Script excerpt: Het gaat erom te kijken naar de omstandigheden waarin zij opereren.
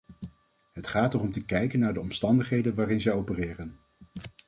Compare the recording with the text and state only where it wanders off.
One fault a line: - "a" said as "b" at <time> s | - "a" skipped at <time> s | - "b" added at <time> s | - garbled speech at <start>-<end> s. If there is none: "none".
none